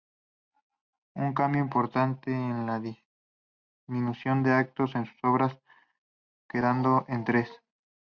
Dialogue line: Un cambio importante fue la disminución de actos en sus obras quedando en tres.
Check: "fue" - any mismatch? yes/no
yes